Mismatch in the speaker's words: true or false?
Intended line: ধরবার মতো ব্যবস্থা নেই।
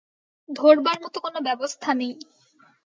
true